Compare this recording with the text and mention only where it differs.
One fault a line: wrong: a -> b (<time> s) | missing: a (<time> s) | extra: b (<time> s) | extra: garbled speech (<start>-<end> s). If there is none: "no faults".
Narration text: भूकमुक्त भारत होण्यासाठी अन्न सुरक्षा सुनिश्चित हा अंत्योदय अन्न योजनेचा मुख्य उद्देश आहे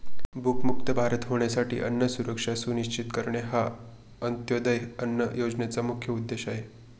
extra: करणे (3.1 s)